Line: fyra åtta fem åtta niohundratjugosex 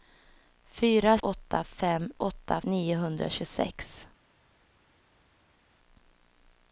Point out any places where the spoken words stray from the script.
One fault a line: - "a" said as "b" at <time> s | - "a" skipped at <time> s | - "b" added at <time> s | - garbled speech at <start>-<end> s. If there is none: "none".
none